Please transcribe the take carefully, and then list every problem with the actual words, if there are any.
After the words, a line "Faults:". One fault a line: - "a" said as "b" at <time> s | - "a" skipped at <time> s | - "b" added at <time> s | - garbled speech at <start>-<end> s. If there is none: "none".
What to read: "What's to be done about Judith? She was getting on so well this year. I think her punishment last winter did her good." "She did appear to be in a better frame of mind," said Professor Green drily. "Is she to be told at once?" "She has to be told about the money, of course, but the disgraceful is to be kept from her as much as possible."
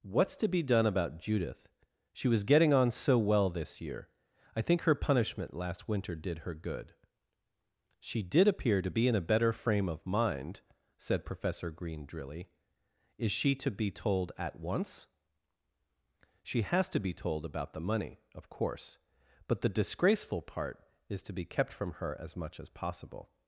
"What's to be done about Judith? She was getting on so well this year. I think her punishment last winter did her good." "She did appear to be in a better frame of mind," said Professor Green drily. "Is she to be told at once?" "She has to be told about the money, of course, but the disgraceful part is to be kept from her as much as possible."
Faults:
- "part" added at 20.4 s